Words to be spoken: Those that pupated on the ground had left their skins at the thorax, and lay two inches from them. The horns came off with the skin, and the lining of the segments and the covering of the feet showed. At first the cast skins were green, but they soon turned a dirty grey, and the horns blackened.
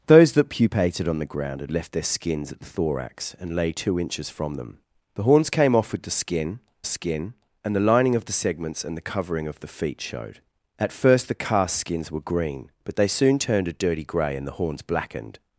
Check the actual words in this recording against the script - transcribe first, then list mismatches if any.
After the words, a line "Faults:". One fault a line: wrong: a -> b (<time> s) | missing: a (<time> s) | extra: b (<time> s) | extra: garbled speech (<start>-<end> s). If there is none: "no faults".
Those that pupated on the ground had left their skins at the thorax, and lay two inches from them. The horns came off with the skin skin, and the lining of the segments and the covering of the feet showed. At first the cast skins were green, but they soon turned a dirty grey, and the horns blackened.
Faults:
extra: skin (6.8 s)